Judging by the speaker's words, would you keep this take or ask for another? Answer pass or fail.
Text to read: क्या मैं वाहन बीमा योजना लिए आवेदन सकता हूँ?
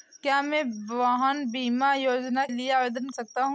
pass